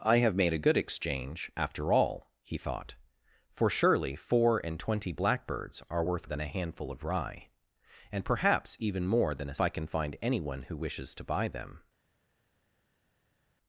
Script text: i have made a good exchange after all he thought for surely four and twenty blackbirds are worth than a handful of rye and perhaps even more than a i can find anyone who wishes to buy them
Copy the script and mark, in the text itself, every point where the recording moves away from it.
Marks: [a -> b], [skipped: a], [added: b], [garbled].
i have made a good exchange after all he thought for surely four and twenty blackbirds are worth than a handful of rye and perhaps even more than a i can find anyone who wishes to buy them